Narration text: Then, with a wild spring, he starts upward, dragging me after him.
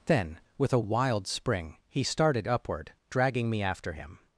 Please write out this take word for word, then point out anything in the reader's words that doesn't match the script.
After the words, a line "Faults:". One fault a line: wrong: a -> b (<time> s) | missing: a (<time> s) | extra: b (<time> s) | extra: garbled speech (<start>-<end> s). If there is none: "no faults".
Then, with a wild spring, he started upward, dragging me after him.
Faults:
wrong: starts -> started (2.0 s)